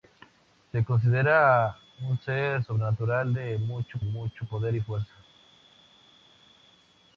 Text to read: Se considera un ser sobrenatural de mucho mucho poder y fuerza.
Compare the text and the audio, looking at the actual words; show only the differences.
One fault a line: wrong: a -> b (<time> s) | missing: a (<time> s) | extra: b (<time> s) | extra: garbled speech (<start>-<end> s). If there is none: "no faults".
no faults